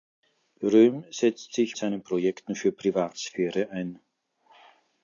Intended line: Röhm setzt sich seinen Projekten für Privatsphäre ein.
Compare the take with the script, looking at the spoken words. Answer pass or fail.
pass